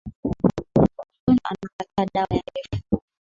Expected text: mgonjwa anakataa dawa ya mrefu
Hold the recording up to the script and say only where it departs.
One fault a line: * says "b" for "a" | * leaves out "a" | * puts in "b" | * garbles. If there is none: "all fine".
all fine